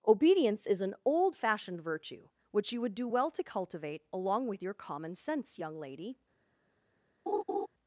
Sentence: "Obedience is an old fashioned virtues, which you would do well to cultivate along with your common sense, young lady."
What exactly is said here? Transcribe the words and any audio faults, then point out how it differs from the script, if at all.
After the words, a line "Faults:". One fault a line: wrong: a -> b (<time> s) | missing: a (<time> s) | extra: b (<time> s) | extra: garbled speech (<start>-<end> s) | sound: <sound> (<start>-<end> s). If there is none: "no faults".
"Obedience is an old fashioned virtue, which you would do well to cultivate along with your common sense, young lady."
Faults:
wrong: virtues -> virtue (1.8 s)
sound: laugh (7.3-7.7 s)